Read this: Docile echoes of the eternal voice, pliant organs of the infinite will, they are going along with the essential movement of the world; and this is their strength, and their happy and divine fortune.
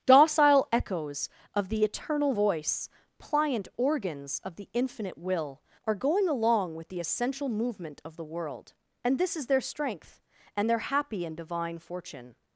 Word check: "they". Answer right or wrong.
wrong